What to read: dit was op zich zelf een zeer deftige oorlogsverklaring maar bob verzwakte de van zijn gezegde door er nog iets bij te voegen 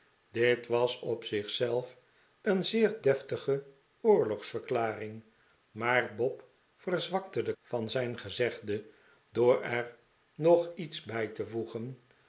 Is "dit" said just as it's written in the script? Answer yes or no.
yes